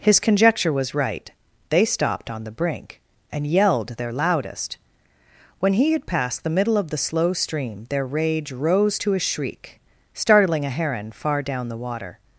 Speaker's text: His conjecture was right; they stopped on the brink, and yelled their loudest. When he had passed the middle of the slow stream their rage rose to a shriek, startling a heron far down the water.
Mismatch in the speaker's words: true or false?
false